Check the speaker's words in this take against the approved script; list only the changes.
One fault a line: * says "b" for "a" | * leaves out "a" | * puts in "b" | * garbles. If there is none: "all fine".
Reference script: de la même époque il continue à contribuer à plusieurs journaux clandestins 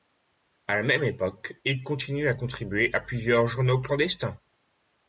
* says "à" for "de"